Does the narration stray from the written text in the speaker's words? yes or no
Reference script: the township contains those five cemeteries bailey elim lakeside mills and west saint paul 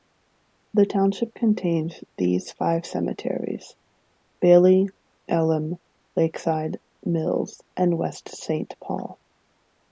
yes